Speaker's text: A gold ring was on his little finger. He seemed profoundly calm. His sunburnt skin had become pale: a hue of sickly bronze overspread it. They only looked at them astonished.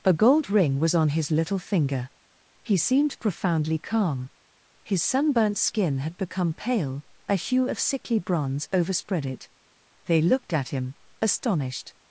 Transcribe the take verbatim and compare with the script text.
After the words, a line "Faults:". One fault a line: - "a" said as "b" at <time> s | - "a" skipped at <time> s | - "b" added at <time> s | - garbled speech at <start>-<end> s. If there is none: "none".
A gold ring was on his little finger. He seemed profoundly calm. His sunburnt skin had become pale: a hue of sickly bronze overspread it. They looked at him astonished.
Faults:
- "only" skipped at 10.2 s
- "them" said as "him" at 10.7 s